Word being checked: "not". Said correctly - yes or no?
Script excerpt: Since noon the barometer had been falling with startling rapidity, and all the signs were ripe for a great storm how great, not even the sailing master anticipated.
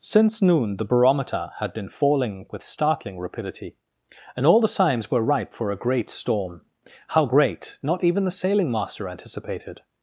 yes